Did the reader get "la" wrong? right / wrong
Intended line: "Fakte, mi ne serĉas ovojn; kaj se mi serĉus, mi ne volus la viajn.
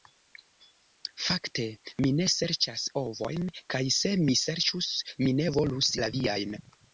right